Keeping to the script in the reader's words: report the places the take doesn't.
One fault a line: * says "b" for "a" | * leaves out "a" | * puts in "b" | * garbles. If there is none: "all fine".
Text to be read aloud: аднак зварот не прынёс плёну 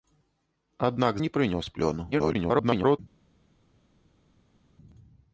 * leaves out "зварот"
* garbles